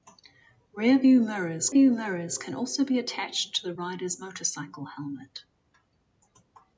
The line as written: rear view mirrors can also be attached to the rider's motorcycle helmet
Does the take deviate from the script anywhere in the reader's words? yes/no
yes